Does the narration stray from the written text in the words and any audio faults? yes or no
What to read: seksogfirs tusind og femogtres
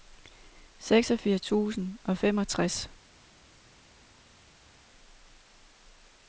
no